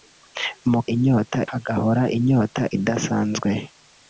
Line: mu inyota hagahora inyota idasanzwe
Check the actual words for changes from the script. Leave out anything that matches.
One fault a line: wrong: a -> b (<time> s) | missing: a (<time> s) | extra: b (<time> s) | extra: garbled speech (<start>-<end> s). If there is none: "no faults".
no faults